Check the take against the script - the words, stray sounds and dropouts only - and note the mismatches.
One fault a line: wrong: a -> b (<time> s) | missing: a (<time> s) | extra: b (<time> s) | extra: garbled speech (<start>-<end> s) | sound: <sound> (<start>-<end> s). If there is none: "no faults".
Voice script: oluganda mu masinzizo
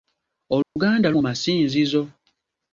sound: dropout (0.6-0.8 s)